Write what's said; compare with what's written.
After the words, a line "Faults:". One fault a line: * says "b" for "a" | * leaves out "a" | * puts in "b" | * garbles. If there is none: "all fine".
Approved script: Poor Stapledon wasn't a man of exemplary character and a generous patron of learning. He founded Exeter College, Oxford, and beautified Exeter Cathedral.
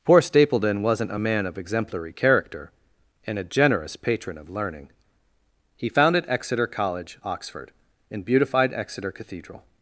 Poor Stapledon wasn't a man of exemplary character and a generous patron of learning. He founded Exeter College, Oxford, and beautified Exeter Cathedral.
Faults:
all fine